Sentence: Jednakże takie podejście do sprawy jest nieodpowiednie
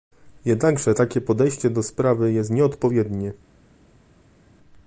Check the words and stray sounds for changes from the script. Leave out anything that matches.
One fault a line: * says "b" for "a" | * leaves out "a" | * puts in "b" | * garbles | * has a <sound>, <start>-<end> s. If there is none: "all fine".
all fine